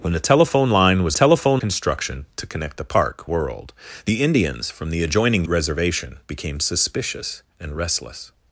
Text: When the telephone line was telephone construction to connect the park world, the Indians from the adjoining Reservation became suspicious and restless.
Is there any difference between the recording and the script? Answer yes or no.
no